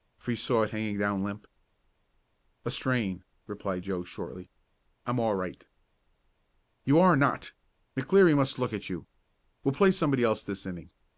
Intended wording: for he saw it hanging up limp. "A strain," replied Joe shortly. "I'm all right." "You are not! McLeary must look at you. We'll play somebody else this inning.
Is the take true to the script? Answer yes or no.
no